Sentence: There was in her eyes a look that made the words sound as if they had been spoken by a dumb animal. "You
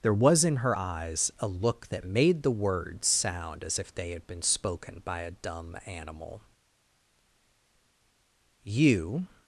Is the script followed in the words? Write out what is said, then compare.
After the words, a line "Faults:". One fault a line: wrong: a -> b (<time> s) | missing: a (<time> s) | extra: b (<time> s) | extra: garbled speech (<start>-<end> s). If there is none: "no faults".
There was in her eyes a look that made the words sound as if they had been spoken by a dumb animal. "You
Faults:
no faults